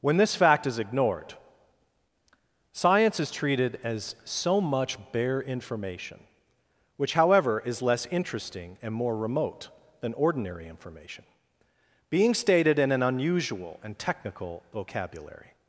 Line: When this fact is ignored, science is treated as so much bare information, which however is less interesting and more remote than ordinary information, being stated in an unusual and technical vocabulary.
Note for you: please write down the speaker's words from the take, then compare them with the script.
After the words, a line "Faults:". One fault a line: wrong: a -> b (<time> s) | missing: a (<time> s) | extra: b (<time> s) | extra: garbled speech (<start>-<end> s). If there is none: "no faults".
When this fact is ignored, science is treated as so much bare information, which however is less interesting and more remote than ordinary information, being stated in an unusual and technical vocabulary.
Faults:
no faults